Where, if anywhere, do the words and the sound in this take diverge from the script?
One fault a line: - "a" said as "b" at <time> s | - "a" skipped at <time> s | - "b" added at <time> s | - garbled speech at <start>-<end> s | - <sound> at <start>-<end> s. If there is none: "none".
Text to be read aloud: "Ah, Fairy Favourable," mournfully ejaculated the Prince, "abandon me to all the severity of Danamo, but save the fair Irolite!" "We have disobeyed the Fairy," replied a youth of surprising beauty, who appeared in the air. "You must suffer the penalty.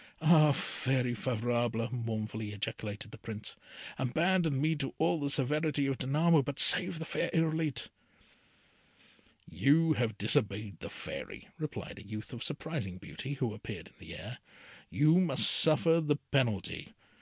- "We" said as "You" at 9.4 s